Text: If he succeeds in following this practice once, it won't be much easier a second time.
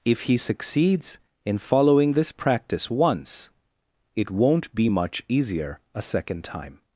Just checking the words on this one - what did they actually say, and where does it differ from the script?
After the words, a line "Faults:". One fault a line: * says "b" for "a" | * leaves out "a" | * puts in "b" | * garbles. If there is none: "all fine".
If he succeeds in following this practice once, it won't be much easier a second time.
Faults:
all fine